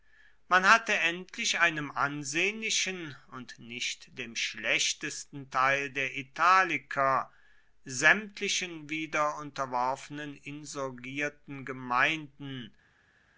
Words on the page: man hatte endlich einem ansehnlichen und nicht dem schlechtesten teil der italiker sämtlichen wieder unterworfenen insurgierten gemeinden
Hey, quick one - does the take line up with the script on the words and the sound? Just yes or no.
yes